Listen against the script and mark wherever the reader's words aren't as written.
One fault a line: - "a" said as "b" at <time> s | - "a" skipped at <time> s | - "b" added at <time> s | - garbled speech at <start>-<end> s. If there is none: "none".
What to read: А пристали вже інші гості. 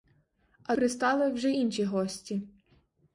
none